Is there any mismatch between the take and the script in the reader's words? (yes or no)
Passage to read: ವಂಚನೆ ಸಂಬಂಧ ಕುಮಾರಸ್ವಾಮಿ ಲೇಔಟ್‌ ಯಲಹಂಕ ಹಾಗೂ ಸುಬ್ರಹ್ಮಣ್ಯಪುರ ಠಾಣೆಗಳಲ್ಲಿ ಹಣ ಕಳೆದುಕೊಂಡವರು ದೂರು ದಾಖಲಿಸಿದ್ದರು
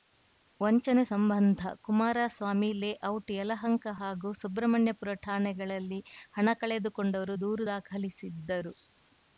no